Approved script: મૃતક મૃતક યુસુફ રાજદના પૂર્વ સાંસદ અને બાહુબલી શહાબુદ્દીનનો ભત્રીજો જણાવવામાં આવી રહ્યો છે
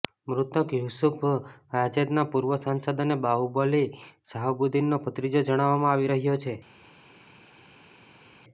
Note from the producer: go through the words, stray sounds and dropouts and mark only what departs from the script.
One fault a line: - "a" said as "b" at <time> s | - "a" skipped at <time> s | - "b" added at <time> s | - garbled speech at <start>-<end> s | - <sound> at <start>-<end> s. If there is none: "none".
- "મૃતક" skipped at 0.7 s